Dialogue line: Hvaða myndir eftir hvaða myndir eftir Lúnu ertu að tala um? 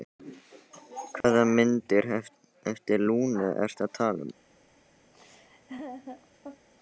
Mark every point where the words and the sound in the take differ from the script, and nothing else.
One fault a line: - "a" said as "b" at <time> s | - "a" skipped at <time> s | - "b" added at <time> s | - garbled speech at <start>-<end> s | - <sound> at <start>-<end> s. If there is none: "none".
- dropout at 1.2-1.2 s
- "hvaða myndir eftir" skipped at 3.0 s
- laugh at 5.1-6.7 s